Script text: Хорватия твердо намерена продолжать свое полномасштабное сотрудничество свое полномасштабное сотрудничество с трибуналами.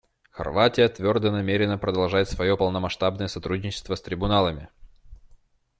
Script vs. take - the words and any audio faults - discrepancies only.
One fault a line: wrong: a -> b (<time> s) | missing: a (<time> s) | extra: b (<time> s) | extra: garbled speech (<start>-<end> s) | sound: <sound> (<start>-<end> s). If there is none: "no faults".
missing: свое полномасштабное сотрудничество (4.0 s)